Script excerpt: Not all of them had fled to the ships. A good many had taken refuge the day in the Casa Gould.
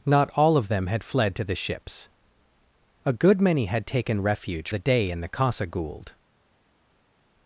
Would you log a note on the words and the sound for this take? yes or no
no